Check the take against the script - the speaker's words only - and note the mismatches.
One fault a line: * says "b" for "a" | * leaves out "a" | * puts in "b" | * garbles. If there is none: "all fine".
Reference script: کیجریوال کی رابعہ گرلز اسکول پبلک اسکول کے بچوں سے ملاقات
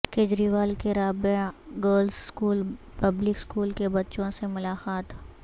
all fine